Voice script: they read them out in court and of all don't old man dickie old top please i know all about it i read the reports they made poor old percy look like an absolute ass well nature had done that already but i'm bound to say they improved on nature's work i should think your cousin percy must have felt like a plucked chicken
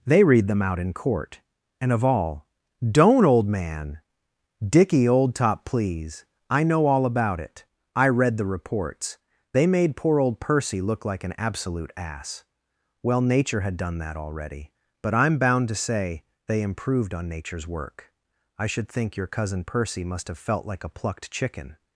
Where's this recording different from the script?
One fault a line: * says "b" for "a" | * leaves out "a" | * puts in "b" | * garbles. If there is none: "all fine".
all fine